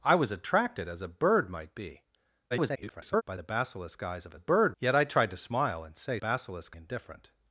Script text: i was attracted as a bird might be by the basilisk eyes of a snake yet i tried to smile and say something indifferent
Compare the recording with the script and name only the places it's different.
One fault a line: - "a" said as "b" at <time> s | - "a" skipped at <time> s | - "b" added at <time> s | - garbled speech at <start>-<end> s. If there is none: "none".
- garbled speech at 2.5-3.2 s
- "snake" said as "bird" at 4.3 s
- "something" said as "basilisk" at 6.2 s